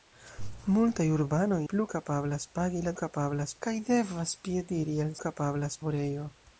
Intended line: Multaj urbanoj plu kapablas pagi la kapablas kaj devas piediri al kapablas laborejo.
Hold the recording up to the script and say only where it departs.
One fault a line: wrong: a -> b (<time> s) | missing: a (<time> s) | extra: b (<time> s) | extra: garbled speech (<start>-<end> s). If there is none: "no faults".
no faults